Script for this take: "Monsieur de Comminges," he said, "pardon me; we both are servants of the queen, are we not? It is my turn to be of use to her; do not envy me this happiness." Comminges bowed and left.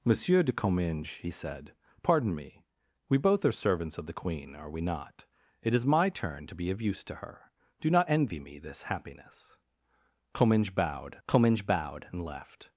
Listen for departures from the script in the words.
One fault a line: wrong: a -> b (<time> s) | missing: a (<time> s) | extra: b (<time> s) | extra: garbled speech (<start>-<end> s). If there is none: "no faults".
extra: comminges bowed (11.3 s)